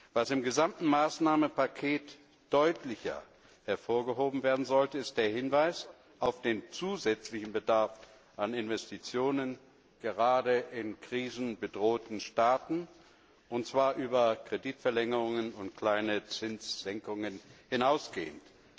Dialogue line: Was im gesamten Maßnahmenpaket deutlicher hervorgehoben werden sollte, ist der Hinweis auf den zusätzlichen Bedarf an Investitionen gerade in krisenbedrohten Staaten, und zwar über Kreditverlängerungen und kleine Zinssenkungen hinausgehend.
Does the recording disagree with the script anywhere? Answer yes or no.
no